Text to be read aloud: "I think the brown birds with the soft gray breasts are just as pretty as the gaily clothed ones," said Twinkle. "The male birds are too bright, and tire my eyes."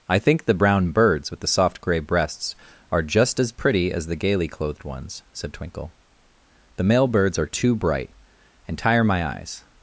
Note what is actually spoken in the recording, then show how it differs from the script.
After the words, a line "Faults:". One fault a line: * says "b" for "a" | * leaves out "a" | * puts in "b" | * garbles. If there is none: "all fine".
"I think the brown birds with the soft gray breasts are just as pretty as the gaily clothed ones," said Twinkle. "The male birds are too bright, and tire my eyes."
Faults:
all fine